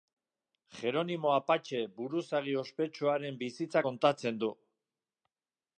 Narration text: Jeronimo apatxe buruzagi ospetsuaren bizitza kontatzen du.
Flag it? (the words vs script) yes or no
no